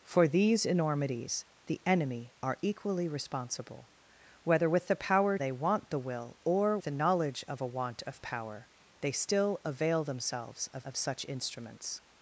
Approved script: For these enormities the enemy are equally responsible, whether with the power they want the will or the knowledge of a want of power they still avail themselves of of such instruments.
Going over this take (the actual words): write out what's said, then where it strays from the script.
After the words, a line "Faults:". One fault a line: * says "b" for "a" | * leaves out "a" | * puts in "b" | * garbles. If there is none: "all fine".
For these enormities the enemy are equally responsible, whether with the power they want the will or the knowledge of a want of power they still avail themselves of of such instruments.
Faults:
all fine